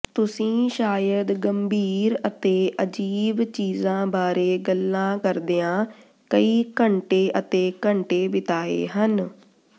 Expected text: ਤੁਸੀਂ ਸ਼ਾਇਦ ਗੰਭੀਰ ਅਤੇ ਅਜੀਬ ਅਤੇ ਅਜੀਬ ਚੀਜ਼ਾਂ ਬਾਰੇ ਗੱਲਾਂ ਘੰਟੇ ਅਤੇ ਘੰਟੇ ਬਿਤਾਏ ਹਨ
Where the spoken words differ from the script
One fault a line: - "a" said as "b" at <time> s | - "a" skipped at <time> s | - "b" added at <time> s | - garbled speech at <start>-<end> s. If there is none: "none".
- "ਅਤੇ ਅਜੀਬ" skipped at 3.4 s
- "ਕਰਦਿਆਂ ਕਈ" added at 5.2 s